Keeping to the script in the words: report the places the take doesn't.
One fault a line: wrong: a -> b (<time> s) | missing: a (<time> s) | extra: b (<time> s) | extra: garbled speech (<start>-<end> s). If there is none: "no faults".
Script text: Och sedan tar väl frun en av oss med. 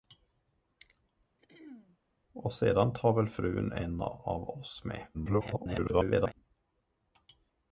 extra: garbled speech (5.1-6.3 s)